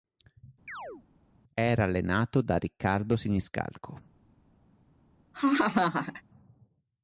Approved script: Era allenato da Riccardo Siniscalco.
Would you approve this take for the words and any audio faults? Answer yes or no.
no